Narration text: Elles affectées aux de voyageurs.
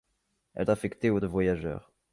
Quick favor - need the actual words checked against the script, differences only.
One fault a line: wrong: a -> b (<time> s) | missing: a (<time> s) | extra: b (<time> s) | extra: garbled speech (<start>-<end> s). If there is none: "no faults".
no faults